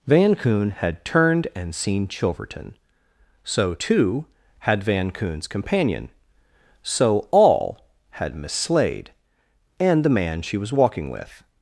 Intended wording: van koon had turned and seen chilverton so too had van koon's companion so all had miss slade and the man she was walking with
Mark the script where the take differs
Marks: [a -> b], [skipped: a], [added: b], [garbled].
van koon had turned and seen chilverton so too had van koon's companion so all had miss slade and the man she was walking with